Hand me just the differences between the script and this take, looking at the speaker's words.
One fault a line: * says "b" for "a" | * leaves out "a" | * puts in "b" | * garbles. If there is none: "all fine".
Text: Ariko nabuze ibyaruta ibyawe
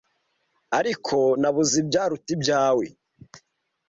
all fine